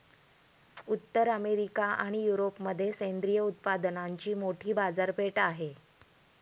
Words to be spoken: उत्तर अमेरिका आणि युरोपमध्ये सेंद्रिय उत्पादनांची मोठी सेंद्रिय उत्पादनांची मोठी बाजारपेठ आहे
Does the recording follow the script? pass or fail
fail